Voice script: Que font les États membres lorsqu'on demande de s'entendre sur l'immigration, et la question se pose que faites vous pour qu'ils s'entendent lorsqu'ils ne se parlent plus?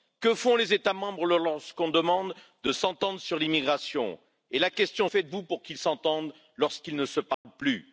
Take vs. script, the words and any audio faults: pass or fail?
fail